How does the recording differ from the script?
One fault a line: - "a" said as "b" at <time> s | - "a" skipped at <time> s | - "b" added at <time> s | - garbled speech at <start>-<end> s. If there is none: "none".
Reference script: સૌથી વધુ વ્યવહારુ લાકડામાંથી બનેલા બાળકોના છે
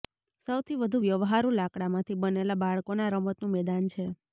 - "રમતનું મેદાન" added at 3.1 s